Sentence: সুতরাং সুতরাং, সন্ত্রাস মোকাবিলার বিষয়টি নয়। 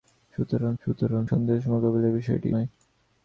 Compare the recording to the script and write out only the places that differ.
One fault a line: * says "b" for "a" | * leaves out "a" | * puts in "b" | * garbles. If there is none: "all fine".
all fine